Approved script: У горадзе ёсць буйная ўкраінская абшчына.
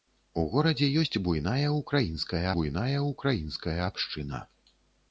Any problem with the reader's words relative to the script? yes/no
yes